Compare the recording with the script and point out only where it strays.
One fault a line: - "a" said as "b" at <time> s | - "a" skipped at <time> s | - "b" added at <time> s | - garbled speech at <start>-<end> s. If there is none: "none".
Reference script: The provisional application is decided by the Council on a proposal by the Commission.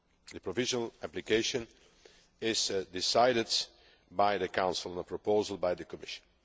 none